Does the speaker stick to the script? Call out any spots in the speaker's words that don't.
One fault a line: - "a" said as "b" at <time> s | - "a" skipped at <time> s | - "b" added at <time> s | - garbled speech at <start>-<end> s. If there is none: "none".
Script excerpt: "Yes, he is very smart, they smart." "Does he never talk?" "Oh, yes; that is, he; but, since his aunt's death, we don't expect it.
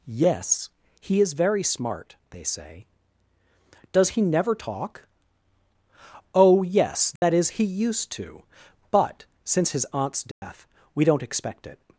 - "smart" said as "say" at 2.4 s
- "used to" added at 7.6 s